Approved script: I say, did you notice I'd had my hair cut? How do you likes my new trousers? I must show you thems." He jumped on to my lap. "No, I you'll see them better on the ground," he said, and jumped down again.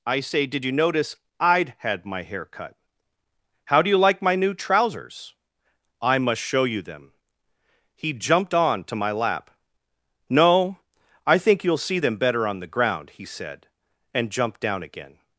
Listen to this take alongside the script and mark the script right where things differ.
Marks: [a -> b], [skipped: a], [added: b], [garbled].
I say, did you notice I'd had my hair cut? How do you [likes -> like] my new trousers? I must show you [thems." -> them] He jumped on to my lap. "No, I [added: think] you'll see them better on the ground," he said, and jumped down again.